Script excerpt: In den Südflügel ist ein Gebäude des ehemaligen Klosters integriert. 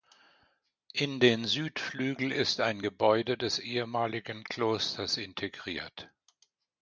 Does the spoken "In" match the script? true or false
true